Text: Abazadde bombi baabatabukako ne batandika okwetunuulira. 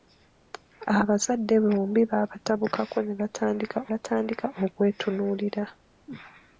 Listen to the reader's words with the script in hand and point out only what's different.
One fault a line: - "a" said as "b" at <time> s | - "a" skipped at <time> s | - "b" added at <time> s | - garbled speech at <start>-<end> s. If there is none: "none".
- "batandika" added at 3.9 s